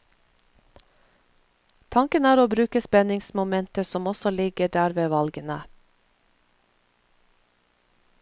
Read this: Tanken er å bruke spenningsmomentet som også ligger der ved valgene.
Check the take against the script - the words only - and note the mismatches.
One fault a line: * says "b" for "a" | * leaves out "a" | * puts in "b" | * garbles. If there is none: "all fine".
all fine